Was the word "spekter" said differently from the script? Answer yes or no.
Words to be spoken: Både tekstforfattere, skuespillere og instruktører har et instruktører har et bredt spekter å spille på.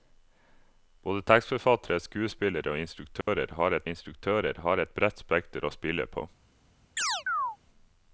no